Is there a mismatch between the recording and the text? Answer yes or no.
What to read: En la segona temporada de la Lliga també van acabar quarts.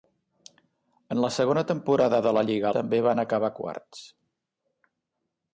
no